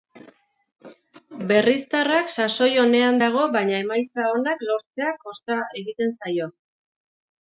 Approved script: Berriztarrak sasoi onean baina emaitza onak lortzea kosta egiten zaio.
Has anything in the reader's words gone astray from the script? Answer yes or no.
yes